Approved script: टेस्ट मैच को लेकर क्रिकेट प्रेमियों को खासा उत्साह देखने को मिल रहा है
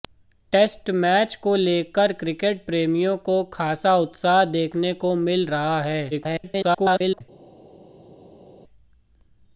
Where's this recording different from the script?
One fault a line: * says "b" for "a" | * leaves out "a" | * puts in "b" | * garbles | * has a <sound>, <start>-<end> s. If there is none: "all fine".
* garbles